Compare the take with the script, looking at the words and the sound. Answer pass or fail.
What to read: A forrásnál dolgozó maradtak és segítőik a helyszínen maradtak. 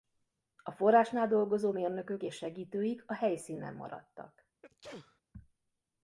fail